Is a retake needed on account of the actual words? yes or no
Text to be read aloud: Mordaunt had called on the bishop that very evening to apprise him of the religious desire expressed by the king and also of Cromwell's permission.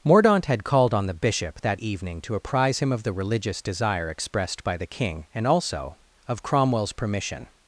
yes